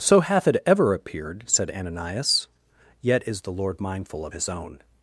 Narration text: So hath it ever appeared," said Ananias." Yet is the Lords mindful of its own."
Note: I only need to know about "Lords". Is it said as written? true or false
false